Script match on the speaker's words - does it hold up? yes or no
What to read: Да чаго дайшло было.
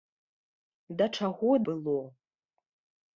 no